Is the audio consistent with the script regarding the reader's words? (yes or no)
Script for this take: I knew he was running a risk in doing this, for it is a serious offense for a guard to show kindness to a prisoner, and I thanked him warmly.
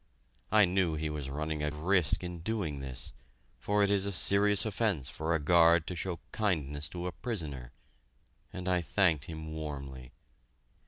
yes